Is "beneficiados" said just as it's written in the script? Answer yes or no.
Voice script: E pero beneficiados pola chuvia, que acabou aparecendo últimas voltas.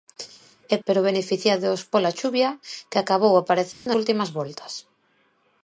yes